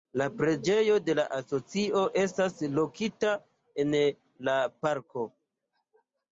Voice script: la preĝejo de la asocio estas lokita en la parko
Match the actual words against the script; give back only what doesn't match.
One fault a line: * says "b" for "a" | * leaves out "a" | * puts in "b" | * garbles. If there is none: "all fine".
all fine